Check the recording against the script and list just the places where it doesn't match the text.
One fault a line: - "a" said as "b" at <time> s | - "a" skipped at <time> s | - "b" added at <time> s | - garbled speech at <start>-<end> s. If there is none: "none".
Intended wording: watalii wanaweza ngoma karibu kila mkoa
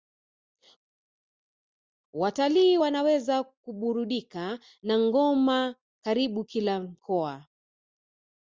- "kuburudika na" added at 3.4 s